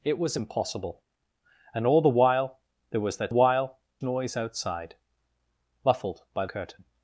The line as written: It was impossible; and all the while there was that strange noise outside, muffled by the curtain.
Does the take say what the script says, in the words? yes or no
no